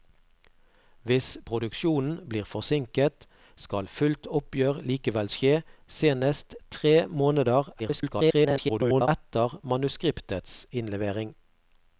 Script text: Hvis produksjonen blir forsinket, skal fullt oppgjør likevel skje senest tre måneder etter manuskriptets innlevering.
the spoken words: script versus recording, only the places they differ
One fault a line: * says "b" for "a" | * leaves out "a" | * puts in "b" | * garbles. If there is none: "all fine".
* garbles